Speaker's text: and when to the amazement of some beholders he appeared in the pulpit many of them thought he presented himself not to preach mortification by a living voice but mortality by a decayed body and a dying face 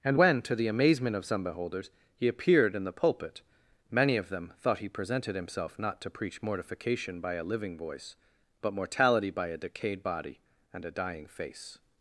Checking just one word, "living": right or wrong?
right